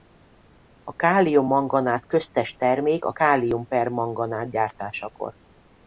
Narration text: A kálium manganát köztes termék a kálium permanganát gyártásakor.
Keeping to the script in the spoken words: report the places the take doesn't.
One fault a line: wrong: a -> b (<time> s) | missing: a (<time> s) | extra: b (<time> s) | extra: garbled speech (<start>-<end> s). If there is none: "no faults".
no faults